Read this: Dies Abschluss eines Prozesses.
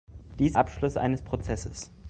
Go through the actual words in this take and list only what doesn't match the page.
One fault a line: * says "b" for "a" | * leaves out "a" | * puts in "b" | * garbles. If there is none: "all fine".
all fine